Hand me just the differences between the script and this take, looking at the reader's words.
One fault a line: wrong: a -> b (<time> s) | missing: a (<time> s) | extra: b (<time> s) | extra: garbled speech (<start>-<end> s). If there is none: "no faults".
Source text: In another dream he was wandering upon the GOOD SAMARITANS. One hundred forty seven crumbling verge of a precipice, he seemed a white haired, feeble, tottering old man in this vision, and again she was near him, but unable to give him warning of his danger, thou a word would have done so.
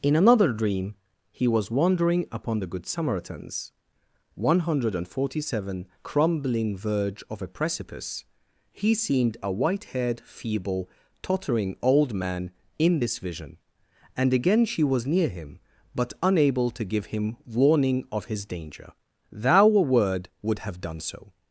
no faults